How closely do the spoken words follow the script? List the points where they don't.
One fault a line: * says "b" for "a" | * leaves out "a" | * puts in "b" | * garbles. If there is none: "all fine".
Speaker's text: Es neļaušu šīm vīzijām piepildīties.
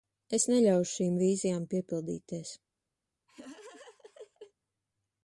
all fine